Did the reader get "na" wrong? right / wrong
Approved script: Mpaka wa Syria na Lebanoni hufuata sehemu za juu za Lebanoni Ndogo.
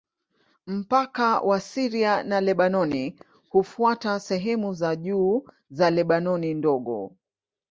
right